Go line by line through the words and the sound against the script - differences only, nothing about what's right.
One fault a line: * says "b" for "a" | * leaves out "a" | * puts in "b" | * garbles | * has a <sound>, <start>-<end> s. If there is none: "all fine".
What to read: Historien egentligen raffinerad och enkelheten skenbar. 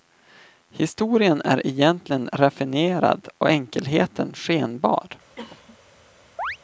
* puts in "är"
* has a cough, 5.4-5.8 s
* has a chirp, 6.4-6.6 s